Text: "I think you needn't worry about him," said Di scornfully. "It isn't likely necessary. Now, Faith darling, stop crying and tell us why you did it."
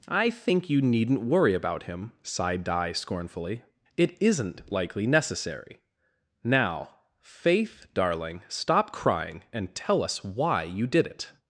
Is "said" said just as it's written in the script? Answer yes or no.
no